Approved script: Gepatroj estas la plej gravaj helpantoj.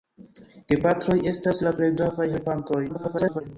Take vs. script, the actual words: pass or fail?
fail